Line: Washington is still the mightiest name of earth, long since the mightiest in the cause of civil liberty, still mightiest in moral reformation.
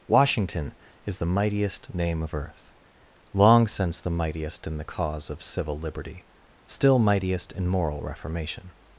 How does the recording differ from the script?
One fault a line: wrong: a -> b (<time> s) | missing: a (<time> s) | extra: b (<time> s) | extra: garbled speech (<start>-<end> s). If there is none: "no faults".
missing: still (1.2 s)